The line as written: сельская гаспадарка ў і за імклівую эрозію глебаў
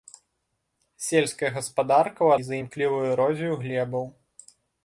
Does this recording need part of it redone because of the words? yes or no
no